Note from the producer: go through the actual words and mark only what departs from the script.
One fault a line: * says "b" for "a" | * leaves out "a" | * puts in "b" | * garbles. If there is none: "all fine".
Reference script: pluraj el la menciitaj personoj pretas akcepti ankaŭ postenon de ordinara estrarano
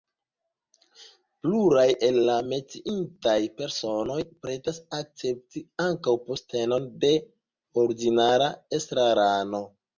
all fine